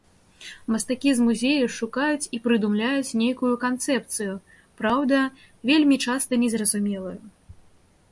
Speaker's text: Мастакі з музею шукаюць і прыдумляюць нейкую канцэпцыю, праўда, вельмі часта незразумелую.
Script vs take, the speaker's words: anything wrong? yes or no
no